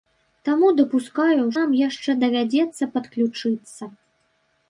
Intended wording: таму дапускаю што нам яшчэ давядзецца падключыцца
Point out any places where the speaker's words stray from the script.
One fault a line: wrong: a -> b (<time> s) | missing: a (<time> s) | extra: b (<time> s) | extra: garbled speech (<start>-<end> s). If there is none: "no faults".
missing: што (1.4 s)